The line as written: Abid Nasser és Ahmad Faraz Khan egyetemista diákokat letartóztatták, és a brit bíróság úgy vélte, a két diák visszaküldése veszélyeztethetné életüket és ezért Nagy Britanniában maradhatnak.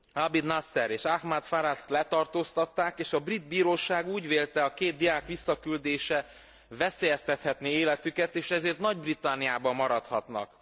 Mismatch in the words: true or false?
true